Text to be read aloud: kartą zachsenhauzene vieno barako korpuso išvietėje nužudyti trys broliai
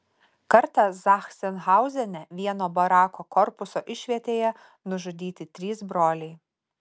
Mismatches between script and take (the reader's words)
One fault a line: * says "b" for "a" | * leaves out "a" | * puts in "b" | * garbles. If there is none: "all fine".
all fine